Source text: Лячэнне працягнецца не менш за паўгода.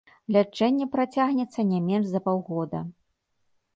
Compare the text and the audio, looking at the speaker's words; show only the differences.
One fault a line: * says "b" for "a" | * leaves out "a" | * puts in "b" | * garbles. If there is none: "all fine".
all fine